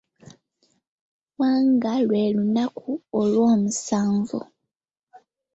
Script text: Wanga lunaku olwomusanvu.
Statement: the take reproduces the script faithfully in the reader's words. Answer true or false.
false